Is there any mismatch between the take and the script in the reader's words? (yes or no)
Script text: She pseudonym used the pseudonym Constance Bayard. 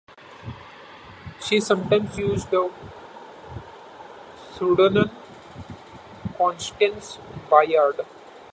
yes